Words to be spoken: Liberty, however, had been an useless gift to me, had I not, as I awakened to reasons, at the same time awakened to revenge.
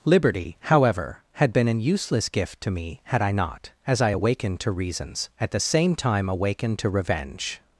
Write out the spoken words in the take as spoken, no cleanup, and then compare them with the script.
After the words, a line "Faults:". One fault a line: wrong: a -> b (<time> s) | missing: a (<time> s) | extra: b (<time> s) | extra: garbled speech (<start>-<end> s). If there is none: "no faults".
Liberty, however, had been an useless gift to me, had I not, as I awakened to reasons, at the same time awakened to revenge.
Faults:
no faults